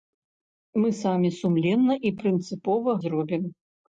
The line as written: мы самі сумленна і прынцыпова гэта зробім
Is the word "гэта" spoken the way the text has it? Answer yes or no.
no